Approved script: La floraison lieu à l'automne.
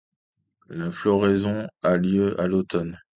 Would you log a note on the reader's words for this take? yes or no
yes